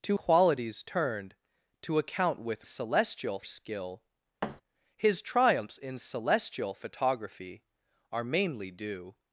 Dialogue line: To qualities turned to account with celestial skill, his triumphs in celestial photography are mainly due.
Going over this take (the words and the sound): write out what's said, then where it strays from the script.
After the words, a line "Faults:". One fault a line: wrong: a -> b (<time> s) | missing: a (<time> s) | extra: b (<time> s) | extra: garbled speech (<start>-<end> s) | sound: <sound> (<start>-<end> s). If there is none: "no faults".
To qualities turned to account with celestial skill, his triumphs in celestial photography are mainly due.
Faults:
sound: thud (4.4-4.6 s)